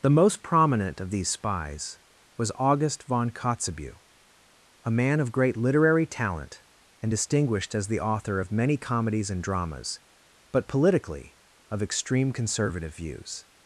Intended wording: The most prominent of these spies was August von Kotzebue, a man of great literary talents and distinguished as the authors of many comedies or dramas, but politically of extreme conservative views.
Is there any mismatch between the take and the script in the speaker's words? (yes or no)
yes